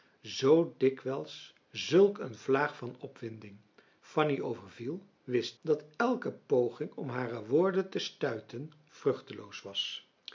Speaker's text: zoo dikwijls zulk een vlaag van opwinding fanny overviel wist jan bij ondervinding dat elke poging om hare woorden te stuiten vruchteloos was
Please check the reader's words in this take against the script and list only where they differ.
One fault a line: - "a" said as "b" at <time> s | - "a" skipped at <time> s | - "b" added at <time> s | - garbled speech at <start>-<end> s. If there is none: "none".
- "jan bij ondervinding" skipped at 5.6 s